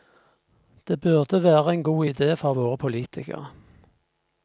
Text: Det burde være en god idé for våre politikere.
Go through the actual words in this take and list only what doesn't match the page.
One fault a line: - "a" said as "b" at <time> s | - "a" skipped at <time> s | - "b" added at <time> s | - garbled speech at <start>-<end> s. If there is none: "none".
none